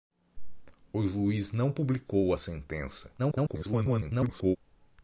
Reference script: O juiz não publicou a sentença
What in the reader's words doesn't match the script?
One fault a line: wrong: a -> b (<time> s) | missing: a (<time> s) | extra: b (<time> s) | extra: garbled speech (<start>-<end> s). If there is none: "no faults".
extra: garbled speech (3.2-4.6 s)